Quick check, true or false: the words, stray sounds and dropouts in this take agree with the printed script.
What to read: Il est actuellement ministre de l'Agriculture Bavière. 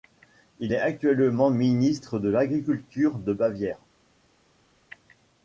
false